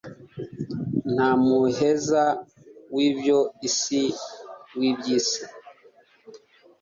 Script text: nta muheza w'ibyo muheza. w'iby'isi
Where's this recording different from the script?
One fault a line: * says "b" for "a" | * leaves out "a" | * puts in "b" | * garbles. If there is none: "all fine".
* says "isi" for "muheza"